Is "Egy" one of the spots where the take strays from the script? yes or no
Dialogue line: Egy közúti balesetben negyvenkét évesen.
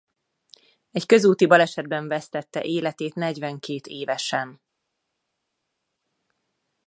no